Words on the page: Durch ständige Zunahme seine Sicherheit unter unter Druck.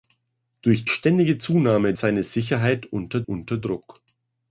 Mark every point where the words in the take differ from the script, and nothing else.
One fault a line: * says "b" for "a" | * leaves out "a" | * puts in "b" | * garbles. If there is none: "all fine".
all fine